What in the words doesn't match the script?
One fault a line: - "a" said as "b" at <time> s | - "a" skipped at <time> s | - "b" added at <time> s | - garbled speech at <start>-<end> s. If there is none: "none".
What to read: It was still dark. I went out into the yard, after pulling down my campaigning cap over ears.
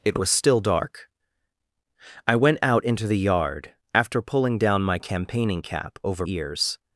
none